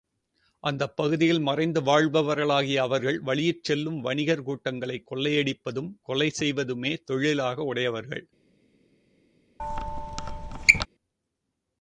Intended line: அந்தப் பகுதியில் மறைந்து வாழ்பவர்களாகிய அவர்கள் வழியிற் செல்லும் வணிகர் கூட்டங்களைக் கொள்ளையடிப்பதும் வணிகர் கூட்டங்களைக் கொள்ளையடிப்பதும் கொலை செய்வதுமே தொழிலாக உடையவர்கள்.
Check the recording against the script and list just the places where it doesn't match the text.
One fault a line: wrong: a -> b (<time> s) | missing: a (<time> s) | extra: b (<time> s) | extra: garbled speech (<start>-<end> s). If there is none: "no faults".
missing: வணிகர் கூட்டங்களைக் கொள்ளையடிப்பதும் (5.9 s)